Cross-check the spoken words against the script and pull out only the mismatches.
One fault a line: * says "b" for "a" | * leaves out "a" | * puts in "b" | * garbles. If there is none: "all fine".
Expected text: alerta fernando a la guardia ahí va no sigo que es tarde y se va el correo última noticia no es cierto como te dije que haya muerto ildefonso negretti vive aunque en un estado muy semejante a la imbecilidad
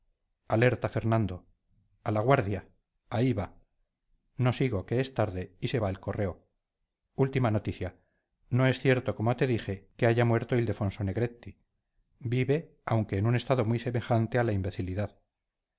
all fine